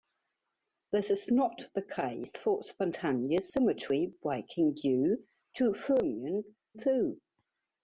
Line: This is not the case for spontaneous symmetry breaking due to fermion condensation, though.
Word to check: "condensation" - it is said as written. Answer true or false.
false